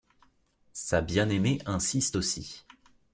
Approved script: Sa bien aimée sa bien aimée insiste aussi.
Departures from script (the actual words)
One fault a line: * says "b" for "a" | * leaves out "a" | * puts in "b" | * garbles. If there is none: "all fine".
* leaves out "sa bien aimée"